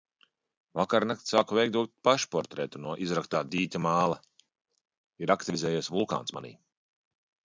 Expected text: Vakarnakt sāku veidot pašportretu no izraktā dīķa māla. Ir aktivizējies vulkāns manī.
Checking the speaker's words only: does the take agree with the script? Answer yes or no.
yes